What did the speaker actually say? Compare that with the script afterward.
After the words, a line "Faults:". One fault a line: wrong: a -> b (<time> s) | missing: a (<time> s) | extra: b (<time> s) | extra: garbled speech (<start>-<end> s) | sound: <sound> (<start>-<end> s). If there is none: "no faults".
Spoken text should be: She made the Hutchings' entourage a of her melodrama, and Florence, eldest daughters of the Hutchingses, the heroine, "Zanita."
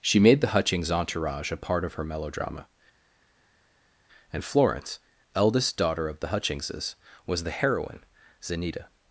She made the Hutchings' entourage a part of her melodrama, and Florence, eldest daughter of the Hutchingses, was the heroine, "Zanita."
Faults:
extra: part (1.6 s)
wrong: daughters -> daughter (5.8 s)
extra: was (7.3 s)